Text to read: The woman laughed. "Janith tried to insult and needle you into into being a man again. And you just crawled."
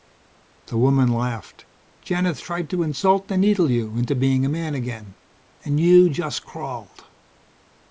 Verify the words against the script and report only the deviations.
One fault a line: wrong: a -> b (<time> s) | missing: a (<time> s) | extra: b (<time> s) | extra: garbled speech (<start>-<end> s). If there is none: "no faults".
missing: into (4.2 s)